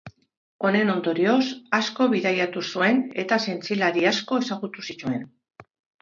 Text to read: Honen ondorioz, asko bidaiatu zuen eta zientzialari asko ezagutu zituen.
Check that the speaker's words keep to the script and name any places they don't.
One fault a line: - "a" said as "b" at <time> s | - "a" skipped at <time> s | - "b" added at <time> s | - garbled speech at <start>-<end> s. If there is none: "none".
none